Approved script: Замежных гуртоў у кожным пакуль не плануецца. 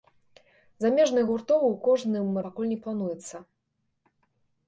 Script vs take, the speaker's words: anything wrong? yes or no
no